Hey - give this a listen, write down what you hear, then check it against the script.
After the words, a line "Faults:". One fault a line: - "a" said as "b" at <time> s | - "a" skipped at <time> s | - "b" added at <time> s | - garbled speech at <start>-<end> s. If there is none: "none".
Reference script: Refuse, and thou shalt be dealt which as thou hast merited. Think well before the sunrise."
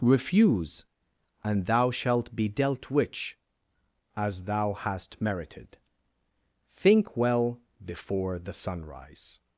Refuse, and thou shalt be dealt which as thou hast merited. Think well before the sunrise."
Faults:
none